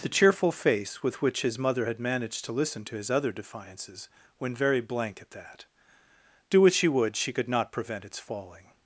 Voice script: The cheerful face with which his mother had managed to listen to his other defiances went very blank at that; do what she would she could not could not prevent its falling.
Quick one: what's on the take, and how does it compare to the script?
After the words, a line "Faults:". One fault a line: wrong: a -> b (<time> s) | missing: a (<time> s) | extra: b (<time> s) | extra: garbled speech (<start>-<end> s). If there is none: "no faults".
The cheerful face with which his mother had managed to listen to his other defiances went very blank at that; do what she would she could not prevent its falling.
Faults:
missing: could not (7.7 s)